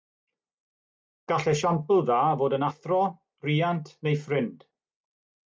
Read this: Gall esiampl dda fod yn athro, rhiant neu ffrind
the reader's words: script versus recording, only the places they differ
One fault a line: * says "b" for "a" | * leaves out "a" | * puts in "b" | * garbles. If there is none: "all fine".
all fine